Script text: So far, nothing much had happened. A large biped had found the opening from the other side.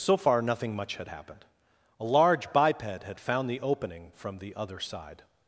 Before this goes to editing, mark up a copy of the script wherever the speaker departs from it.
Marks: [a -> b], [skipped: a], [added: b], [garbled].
So far, nothing much had happened. A large biped had found the opening from the other side.